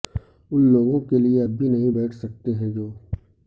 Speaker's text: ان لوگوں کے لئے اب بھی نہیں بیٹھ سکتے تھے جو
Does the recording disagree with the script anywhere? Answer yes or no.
yes